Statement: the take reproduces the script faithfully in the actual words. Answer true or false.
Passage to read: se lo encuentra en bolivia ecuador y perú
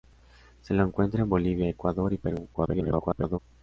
false